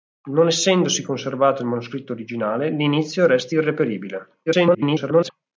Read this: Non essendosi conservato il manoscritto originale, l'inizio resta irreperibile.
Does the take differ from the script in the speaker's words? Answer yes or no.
yes